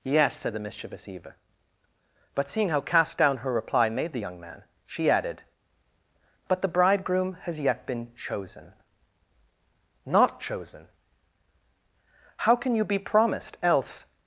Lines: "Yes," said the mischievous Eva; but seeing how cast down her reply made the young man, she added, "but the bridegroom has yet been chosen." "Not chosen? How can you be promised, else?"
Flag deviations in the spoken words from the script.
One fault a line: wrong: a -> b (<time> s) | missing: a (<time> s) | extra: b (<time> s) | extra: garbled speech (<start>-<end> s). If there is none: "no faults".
no faults